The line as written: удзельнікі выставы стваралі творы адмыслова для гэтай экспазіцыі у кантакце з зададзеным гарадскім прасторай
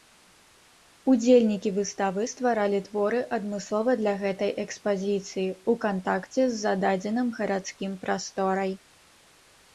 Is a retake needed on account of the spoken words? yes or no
no